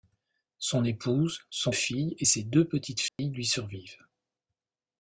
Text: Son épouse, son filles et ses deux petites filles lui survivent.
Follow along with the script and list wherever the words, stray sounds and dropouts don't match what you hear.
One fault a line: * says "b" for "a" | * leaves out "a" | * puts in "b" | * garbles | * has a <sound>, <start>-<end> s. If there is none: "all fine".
* has a dropout, 3.1-3.2 s